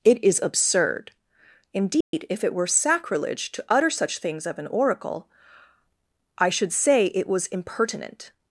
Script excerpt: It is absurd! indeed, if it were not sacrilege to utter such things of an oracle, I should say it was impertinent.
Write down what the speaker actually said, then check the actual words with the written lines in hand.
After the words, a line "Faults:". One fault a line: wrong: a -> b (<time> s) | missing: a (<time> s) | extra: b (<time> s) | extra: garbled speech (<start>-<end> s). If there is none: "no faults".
It is absurd! indeed, if it were sacrilege to utter such things of an oracle, I should say it was impertinent.
Faults:
missing: not (2.7 s)